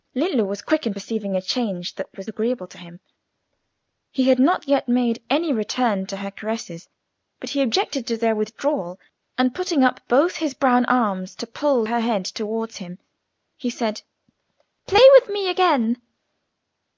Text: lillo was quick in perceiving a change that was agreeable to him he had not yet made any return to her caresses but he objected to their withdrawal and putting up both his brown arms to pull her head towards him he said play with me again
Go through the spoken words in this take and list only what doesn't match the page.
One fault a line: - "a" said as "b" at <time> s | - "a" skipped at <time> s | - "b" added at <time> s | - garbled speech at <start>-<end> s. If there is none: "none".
none